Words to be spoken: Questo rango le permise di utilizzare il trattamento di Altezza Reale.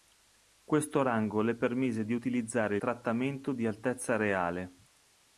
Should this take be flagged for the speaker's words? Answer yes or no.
yes